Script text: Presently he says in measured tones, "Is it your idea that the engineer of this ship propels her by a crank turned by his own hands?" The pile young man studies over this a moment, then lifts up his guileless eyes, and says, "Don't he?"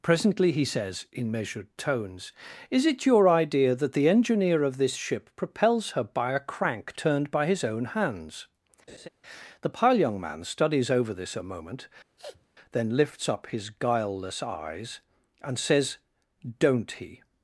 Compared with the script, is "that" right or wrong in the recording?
right